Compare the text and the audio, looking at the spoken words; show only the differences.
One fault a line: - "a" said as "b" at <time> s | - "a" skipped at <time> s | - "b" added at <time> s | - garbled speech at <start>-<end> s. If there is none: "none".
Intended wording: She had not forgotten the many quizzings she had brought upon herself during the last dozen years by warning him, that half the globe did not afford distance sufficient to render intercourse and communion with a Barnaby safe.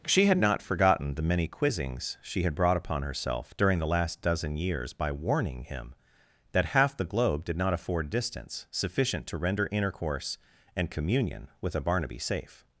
none